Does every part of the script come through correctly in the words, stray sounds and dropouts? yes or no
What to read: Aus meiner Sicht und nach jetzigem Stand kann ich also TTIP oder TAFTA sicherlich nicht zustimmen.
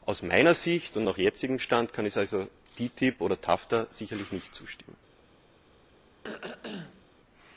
no